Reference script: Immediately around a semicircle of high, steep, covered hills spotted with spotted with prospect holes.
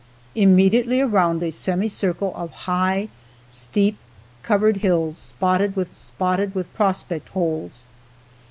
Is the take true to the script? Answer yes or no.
yes